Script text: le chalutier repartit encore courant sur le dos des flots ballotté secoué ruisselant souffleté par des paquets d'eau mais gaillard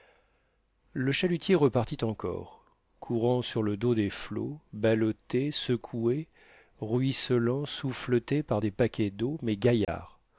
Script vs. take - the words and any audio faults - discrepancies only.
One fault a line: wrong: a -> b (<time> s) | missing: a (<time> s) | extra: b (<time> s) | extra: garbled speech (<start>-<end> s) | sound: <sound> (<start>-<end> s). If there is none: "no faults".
sound: dropout (9.8-9.9 s)